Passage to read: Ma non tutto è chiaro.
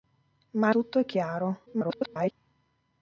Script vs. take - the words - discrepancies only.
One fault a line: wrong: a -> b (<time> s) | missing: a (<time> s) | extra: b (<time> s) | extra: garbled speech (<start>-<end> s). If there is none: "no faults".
missing: non (0.7 s)
extra: garbled speech (1.7-2.3 s)